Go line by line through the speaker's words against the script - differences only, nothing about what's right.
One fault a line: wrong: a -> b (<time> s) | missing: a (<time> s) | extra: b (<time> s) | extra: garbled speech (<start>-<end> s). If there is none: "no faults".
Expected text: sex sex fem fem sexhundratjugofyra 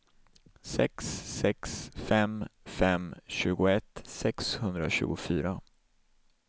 extra: tjugoett (3.3 s)